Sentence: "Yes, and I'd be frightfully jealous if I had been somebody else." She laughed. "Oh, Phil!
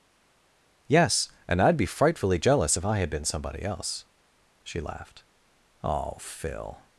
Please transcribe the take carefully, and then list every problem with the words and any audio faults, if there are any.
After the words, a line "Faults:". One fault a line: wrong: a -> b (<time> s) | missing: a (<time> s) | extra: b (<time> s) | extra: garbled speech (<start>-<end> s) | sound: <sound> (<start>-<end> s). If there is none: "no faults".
"Yes, and I'd be frightfully jealous if I had been somebody else." She laughed. "Oh, Phil!
Faults:
no faults